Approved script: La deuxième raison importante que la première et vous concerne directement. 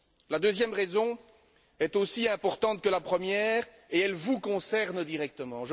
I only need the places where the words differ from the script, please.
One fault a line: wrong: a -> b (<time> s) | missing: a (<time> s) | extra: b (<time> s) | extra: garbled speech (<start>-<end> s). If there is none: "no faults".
extra: est aussi (1.8 s)
extra: elle (4.0 s)